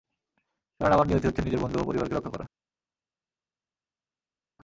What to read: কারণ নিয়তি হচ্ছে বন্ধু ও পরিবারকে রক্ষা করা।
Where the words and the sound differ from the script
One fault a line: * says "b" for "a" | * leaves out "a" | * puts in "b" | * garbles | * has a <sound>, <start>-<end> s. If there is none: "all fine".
* puts in "আমার"
* puts in "নিজের"